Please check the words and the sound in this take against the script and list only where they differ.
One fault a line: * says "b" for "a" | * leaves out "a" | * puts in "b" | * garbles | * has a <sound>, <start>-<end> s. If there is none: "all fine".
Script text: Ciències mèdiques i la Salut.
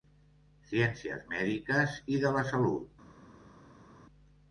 * puts in "de"